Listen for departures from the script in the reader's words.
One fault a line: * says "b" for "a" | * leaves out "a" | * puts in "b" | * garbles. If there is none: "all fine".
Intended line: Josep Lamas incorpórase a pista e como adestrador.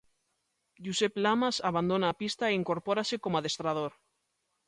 * says "abandona" for "incorpórase"
* puts in "incorpórase"